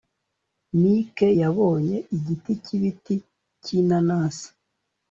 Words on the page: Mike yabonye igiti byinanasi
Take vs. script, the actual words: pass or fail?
fail